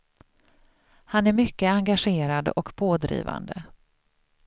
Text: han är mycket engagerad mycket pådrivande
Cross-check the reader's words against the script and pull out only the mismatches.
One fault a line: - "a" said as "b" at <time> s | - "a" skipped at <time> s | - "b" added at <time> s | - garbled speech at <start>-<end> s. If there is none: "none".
- "mycket" said as "och" at 2.5 s